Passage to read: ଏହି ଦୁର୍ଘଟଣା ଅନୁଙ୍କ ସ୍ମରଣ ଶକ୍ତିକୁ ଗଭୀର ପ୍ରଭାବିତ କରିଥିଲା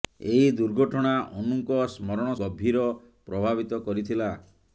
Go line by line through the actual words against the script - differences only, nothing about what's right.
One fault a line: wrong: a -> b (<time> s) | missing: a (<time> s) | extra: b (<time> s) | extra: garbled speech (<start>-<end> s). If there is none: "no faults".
missing: ଶକ୍ତିକୁ (2.3 s)